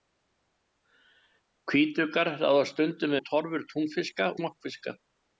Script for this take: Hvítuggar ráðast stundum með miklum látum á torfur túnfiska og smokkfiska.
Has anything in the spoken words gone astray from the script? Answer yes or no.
yes